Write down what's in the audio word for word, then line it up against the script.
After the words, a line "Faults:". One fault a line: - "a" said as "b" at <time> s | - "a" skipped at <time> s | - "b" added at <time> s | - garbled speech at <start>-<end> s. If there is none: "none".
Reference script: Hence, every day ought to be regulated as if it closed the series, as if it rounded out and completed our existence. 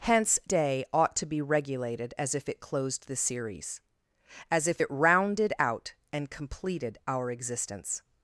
Hence, day ought to be regulated as if it closed the series, as if it rounded out and completed our existence.
Faults:
- "every" skipped at 0.4 s